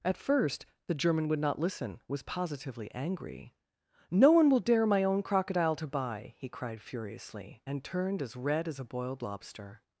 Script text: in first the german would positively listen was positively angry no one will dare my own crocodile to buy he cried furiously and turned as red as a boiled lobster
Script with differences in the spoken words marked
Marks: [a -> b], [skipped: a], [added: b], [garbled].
[in -> at] first the german would [positively -> not] listen was positively angry no one will dare my own crocodile to buy he cried furiously and turned as red as a boiled lobster